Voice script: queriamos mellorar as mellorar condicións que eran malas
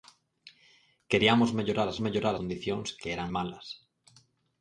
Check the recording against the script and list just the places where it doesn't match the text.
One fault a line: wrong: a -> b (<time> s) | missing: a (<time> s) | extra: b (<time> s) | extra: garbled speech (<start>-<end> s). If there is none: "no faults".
no faults